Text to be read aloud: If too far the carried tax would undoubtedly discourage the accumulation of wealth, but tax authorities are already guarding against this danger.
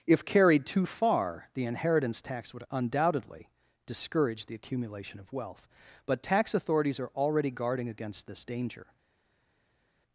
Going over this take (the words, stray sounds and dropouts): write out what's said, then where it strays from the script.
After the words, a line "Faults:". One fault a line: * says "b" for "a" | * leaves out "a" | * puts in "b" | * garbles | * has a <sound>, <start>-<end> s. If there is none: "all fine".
If carried too far the inheritance tax would undoubtedly discourage the accumulation of wealth, but tax authorities are already guarding against this danger.
Faults:
* puts in "carried"
* says "inheritance" for "carried"